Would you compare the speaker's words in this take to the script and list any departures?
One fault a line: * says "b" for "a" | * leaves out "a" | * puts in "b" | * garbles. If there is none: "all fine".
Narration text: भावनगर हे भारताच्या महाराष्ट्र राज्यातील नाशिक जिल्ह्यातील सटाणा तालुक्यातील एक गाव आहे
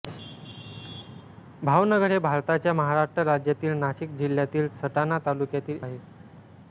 * leaves out "एक गाव"